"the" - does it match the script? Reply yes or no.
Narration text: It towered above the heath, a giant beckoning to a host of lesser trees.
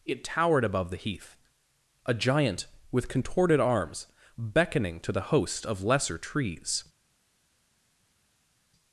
yes